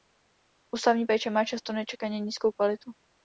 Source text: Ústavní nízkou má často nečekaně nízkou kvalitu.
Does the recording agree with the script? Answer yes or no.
no